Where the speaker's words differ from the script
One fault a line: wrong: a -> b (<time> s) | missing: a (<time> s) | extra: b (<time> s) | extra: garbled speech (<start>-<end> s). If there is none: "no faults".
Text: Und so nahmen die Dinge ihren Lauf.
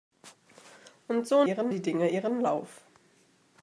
wrong: nahmen -> ihren (1.4 s)